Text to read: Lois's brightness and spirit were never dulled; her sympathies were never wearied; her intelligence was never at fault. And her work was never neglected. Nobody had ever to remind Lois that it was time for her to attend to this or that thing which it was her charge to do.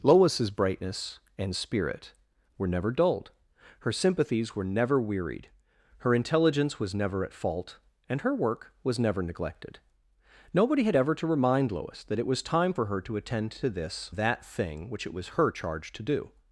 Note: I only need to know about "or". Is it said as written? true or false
false